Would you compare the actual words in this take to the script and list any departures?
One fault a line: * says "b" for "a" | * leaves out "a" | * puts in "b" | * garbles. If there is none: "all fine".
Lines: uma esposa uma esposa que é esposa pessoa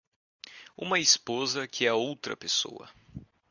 * leaves out "uma esposa"
* says "outra" for "esposa"